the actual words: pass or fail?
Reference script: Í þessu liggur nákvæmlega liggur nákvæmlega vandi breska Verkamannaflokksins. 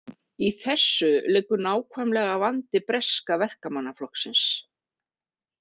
fail